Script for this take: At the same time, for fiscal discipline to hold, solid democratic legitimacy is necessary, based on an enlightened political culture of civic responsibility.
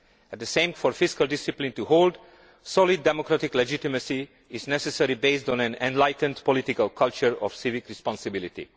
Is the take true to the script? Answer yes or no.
no